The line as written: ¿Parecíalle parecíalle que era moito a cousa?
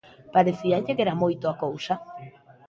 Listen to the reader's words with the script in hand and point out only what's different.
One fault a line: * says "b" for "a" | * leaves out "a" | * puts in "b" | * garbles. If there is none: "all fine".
* leaves out "parecíalle"